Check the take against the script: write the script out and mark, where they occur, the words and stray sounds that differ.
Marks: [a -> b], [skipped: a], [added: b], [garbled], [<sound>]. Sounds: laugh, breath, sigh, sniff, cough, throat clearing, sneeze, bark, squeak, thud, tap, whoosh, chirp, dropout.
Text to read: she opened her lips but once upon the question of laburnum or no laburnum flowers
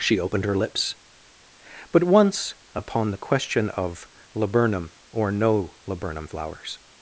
she opened her lips but once upon the question of laburnum or no laburnum flowers